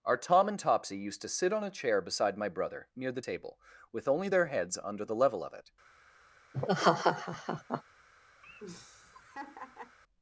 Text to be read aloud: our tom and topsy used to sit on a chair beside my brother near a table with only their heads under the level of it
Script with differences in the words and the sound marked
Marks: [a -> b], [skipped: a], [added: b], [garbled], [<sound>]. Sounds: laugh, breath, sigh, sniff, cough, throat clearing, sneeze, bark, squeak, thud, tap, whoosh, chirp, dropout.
our tom and topsy used to sit on a chair beside my brother near [a -> the] table with only their heads under the level of it [laugh] [laugh]